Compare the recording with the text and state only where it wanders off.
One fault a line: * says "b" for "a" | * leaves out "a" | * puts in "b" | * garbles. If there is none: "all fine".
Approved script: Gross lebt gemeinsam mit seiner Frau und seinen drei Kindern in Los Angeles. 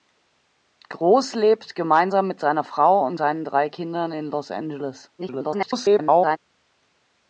* garbles